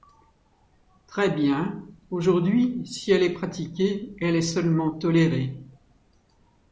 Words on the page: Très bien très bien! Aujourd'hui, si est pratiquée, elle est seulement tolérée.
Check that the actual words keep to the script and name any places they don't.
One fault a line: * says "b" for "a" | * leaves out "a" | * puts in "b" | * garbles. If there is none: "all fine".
* leaves out "très bien"
* puts in "elle"